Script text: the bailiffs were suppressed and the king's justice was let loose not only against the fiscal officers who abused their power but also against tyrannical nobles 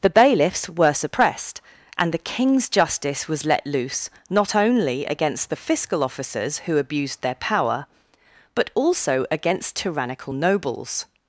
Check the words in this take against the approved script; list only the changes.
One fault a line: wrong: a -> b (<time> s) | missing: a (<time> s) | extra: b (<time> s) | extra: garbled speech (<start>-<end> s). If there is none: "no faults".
no faults